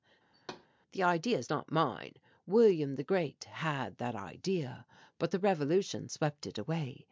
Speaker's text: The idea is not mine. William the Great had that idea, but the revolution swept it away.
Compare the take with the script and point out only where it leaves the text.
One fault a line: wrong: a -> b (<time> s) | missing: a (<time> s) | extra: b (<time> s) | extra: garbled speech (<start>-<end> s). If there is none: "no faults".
no faults